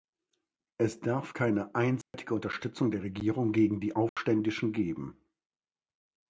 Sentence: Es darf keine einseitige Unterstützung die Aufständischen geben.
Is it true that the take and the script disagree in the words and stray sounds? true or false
true